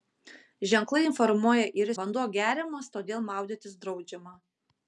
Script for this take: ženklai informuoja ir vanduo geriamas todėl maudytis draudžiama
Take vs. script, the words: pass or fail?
pass